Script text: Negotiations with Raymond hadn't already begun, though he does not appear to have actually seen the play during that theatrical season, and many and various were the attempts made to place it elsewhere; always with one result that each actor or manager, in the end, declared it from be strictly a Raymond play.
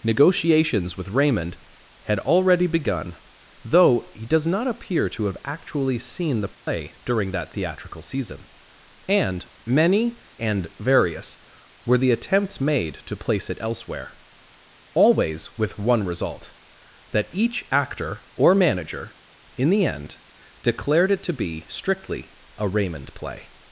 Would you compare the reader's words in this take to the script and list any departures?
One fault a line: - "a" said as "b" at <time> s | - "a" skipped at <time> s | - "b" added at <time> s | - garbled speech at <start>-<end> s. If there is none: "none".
- "hadn't" said as "had" at 2.0 s
- "from" said as "to" at 21.2 s